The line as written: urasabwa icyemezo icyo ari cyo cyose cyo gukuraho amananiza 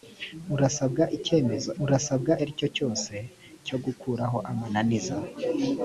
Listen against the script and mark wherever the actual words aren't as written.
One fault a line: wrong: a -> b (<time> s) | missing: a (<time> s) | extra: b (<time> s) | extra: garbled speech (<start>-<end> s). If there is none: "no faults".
wrong: icyo -> urasabwa (1.8 s)